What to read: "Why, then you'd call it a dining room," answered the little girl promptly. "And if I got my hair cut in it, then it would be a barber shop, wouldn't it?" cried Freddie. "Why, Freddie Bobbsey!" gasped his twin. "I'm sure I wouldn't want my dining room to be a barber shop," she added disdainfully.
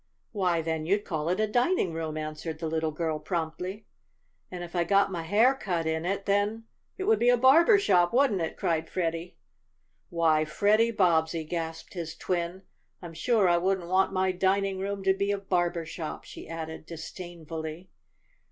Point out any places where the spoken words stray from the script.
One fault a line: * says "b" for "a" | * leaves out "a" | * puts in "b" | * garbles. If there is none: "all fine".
all fine